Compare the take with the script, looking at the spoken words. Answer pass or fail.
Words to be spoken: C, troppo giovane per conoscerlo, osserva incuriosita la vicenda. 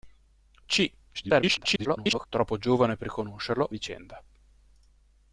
fail